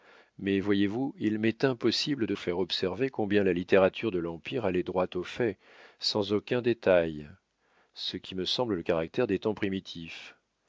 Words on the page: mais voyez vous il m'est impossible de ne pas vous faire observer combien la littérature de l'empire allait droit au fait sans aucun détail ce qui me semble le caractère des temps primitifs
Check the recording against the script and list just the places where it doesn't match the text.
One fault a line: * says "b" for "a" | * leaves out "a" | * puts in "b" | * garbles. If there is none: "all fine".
* leaves out "ne pas vous"